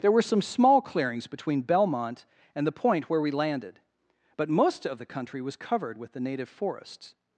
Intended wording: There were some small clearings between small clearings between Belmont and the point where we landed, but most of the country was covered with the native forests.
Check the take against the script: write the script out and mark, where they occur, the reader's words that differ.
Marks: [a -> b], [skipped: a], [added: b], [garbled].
There were some small clearings between [skipped: small clearings between] Belmont and the point where we landed, but most of the country was covered with the native forests.